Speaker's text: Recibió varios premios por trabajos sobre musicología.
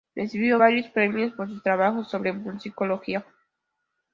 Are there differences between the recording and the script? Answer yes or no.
yes